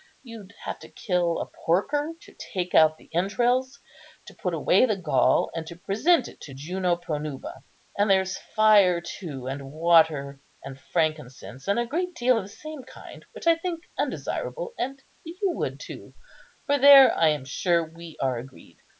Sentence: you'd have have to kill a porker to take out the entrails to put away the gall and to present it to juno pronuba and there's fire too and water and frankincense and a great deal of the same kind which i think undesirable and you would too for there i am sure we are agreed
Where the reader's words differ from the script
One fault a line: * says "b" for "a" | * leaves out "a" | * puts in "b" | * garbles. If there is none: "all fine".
* leaves out "have"